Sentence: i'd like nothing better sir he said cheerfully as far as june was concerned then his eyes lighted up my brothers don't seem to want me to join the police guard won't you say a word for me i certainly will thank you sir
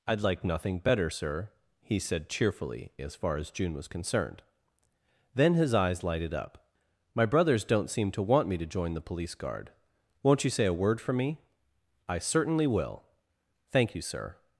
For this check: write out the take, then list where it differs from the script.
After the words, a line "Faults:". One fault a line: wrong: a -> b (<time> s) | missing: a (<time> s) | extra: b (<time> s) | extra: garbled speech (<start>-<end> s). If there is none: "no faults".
i'd like nothing better sir he said cheerfully as far as june was concerned then his eyes lighted up my brothers don't seem to want me to join the police guard won't you say a word for me i certainly will thank you sir
Faults:
no faults